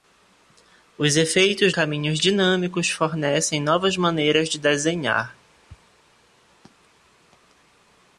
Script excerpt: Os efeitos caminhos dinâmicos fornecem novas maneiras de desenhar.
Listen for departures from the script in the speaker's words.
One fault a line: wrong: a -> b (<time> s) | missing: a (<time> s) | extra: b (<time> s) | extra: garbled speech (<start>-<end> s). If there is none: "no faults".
no faults